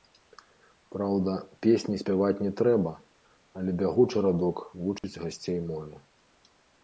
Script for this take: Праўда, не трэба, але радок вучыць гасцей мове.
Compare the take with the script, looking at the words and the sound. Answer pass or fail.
fail